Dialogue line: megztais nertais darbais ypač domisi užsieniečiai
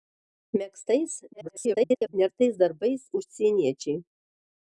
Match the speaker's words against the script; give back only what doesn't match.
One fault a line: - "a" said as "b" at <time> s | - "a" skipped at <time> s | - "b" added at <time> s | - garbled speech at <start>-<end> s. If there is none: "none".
- garbled speech at 1.3-2.1 s
- "ypač domisi" skipped at 3.0 s